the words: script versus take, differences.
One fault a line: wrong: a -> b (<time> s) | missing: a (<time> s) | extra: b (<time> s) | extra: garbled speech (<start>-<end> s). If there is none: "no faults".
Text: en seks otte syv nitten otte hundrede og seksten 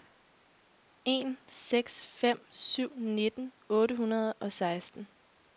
wrong: otte -> fem (2.0 s)